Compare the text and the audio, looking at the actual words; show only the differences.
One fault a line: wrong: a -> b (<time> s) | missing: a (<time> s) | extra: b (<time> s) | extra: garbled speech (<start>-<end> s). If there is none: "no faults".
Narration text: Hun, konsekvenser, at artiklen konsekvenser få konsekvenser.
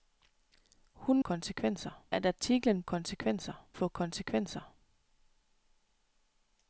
no faults